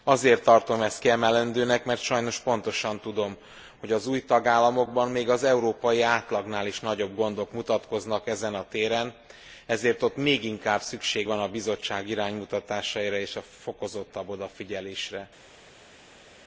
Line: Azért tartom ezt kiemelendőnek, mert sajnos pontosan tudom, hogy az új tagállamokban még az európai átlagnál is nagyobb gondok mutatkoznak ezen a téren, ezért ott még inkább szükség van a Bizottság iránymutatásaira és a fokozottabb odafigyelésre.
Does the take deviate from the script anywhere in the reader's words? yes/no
no